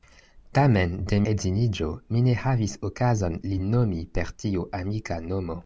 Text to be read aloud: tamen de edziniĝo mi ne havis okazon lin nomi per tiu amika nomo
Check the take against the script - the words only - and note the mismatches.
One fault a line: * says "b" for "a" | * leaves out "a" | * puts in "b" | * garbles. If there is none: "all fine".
all fine